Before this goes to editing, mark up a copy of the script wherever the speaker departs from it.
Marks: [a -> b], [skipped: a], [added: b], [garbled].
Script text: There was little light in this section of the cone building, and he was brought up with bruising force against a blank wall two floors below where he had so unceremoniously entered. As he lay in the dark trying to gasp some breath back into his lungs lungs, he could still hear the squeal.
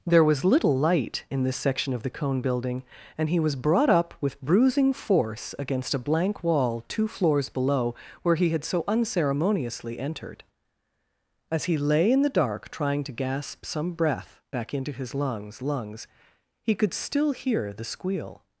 There was little light in this section of the cone building, and he was brought up with bruising force against a blank wall two floors below where he had so unceremoniously entered. As he lay in the dark trying to gasp some breath back into his lungs lungs, he could still hear the squeal.